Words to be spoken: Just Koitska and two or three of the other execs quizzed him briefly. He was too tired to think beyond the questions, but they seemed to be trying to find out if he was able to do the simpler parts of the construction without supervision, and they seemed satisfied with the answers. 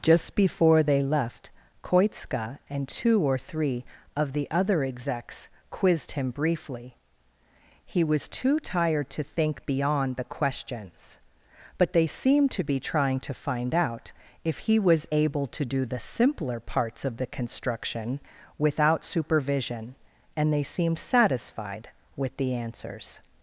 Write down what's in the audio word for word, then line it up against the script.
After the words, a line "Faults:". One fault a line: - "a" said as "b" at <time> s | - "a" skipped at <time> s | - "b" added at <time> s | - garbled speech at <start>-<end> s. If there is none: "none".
Just before they left Koitska and two or three of the other execs quizzed him briefly. He was too tired to think beyond the questions, but they seemed to be trying to find out if he was able to do the simpler parts of the construction without supervision, and they seemed satisfied with the answers.
Faults:
- "before they left" added at 0.3 s